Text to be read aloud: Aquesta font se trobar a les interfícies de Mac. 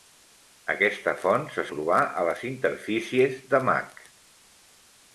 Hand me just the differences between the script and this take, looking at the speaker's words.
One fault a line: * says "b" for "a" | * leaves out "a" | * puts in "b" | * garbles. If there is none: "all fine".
all fine